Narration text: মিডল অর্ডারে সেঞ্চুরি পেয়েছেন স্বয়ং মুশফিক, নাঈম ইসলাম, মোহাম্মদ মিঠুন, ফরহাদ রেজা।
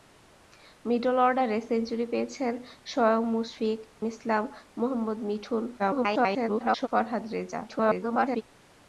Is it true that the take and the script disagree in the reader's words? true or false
true